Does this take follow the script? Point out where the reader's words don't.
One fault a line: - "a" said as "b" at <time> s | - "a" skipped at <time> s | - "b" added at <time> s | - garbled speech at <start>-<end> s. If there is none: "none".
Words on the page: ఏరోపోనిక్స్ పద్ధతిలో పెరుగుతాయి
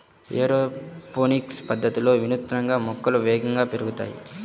- "వినూత్నంగా మొక్కలు వేగంగా" added at 2.2 s